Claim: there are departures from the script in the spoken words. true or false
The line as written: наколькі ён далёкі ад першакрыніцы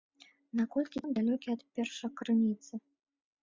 false